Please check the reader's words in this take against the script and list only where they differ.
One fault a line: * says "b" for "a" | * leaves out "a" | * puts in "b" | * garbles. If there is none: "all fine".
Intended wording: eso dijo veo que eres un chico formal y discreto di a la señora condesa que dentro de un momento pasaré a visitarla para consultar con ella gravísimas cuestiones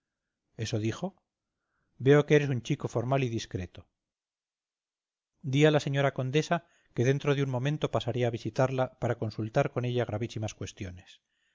all fine